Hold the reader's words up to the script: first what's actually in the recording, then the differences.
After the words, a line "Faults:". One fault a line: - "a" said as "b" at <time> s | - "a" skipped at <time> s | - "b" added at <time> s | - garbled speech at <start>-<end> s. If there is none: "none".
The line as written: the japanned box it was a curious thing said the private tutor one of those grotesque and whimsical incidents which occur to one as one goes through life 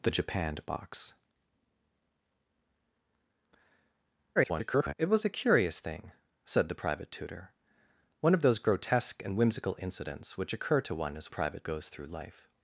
the japanned box [garbled] it was a curious thing said the private tutor one of those grotesque and whimsical incidents which occur to one as private goes through life
Faults:
- garbled speech at 4.4-4.9 s
- "one" said as "private" at 11.3 s